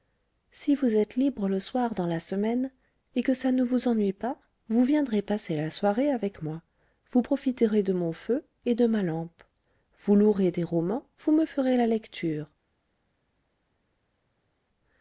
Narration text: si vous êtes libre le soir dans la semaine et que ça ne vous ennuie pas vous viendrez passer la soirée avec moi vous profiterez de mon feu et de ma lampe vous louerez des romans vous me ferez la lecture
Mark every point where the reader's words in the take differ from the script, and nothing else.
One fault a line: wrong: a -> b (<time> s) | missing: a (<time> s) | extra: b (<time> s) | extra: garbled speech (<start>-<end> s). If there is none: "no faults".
no faults